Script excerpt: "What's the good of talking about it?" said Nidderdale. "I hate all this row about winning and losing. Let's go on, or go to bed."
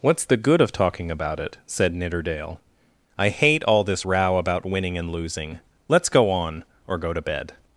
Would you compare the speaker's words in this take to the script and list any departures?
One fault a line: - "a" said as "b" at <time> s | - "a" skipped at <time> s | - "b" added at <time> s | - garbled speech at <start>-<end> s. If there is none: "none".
none